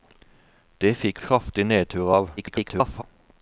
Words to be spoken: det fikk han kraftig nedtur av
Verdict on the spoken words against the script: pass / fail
fail